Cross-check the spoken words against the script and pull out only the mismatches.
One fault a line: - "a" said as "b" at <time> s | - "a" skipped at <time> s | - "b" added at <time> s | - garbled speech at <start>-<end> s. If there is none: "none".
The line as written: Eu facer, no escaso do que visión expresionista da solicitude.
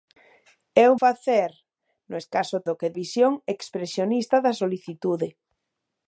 none